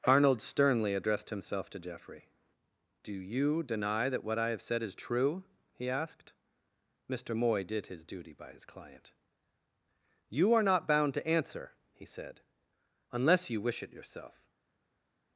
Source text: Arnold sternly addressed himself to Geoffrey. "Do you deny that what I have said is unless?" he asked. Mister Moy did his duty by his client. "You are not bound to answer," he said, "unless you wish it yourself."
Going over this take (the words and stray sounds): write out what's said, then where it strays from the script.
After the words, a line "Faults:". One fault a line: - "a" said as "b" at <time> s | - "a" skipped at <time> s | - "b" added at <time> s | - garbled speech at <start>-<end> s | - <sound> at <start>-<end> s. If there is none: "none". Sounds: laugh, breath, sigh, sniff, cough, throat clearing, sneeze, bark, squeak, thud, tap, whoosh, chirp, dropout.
Arnold sternly addressed himself to Geoffrey. "Do you deny that what I have said is true?" he asked. Mister Moy did his duty by his client. "You are not bound to answer," he said, "unless you wish it yourself."
Faults:
- "unless" said as "true" at 5.0 s